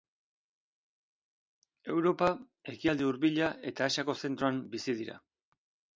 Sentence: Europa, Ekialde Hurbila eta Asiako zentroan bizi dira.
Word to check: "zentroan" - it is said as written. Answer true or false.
true